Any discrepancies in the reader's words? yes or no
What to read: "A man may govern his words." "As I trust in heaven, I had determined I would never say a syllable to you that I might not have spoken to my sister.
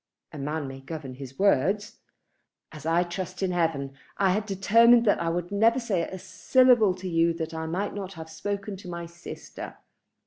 yes